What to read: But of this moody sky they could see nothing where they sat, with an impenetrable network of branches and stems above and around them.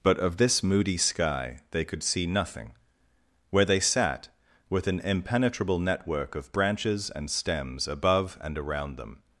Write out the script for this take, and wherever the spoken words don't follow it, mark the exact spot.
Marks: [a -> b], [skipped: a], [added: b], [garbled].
But of this moody sky they could see nothing where they sat, with an impenetrable network of branches and stems above and around them.